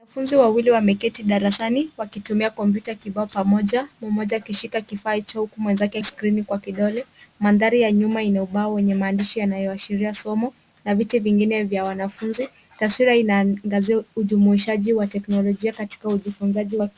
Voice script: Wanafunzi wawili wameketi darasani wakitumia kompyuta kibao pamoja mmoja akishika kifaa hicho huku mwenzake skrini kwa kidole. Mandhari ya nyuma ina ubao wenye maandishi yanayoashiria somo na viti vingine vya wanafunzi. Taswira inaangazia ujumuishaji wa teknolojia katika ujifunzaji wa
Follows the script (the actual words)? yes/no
yes